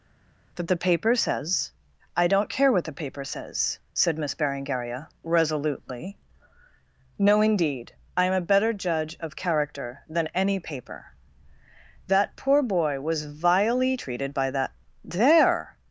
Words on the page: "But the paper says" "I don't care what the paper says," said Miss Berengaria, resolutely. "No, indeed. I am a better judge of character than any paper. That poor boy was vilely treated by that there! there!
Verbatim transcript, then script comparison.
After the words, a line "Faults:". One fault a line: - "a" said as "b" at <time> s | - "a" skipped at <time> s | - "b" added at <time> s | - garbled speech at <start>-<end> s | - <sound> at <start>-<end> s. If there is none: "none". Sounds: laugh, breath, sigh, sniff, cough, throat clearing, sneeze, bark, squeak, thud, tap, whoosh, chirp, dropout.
"That the paper says" "I don't care what the paper says," said Miss Berengaria, resolutely. "No, indeed. I am a better judge of character than any paper. That poor boy was vilely treated by that! there!
Faults:
- "But" said as "That" at 0.6 s
- "there" skipped at 15.8 s